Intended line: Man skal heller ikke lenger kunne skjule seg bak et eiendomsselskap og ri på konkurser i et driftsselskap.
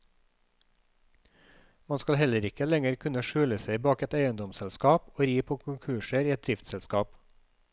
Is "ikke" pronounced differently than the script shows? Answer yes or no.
no